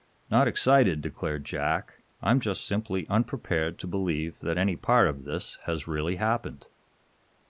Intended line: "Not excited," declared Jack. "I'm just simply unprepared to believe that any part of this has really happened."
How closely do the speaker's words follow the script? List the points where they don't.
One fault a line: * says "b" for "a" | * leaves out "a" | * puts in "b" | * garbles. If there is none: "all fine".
all fine